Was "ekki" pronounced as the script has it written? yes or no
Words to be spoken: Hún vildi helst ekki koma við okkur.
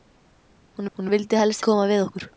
no